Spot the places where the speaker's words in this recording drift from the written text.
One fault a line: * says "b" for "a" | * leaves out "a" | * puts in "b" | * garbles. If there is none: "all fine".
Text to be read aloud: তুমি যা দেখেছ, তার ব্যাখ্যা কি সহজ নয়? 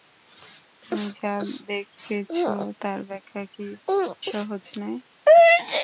all fine